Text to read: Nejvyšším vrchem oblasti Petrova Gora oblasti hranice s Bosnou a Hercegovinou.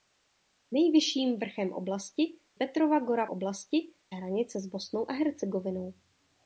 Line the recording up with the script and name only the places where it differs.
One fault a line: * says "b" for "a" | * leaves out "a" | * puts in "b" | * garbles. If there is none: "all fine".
all fine